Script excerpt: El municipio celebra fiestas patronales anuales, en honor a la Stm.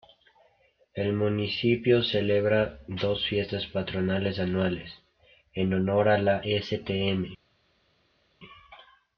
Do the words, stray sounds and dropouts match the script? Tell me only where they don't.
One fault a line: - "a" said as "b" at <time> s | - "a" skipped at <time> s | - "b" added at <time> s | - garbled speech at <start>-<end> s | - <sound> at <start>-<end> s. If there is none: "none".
- "dos" added at 2.9 s